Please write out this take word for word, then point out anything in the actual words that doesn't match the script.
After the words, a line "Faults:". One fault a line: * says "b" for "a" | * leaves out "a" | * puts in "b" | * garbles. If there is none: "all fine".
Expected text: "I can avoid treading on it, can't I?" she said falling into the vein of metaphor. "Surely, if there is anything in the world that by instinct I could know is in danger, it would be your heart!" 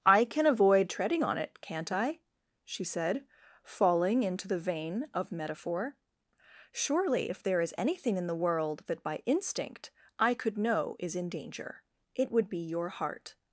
"I can avoid treading on it, can't I?" she said falling into the vein of metaphor. "Surely, if there is anything in the world that by instinct I could know is in danger, it would be your heart!"
Faults:
all fine